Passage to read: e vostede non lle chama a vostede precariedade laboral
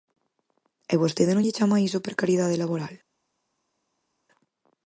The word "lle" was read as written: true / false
true